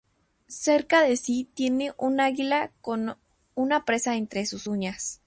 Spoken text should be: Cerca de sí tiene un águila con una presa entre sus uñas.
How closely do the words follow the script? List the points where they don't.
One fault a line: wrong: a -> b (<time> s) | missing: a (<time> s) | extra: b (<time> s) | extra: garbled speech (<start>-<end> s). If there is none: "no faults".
no faults